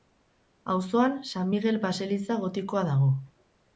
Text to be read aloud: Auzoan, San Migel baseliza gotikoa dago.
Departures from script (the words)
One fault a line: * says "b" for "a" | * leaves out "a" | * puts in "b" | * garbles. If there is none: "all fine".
all fine